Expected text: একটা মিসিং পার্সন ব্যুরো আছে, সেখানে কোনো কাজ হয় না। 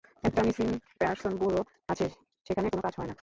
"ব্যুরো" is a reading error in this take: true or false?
false